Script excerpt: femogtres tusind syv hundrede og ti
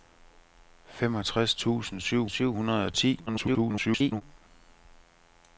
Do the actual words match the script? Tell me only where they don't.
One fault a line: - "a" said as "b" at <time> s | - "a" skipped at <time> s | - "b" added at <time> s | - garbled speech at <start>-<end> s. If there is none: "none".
- "syv" added at 2.3 s
- garbled speech at 3.3-4.2 s